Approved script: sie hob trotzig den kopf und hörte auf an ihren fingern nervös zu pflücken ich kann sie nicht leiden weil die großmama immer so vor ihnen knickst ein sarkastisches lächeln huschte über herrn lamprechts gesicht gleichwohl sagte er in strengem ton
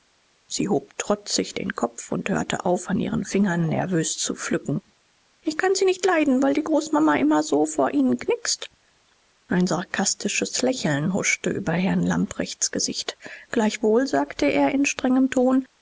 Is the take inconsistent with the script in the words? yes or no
no